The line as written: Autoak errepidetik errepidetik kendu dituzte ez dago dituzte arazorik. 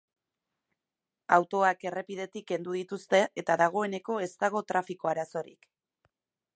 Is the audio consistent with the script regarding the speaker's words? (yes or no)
no